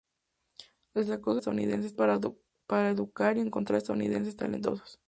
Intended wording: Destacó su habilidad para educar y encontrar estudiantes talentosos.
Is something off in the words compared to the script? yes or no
yes